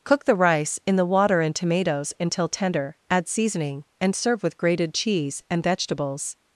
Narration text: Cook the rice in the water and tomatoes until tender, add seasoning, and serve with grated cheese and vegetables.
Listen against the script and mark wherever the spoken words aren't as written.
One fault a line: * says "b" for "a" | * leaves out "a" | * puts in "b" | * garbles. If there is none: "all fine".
all fine